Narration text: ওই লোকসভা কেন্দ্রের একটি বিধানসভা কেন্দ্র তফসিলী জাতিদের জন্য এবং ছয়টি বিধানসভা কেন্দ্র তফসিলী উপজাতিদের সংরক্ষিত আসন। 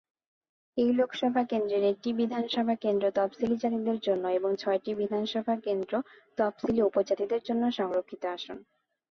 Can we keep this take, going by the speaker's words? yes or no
no